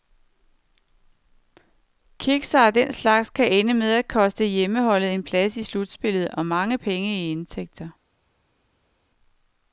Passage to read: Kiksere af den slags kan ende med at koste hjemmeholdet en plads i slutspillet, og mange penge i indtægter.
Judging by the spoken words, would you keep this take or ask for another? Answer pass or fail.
pass